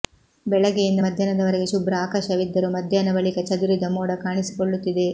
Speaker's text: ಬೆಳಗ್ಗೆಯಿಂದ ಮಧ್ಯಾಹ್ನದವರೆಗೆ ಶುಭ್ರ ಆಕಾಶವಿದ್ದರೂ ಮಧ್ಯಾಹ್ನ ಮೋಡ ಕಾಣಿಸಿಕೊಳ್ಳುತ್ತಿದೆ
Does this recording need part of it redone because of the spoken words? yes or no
yes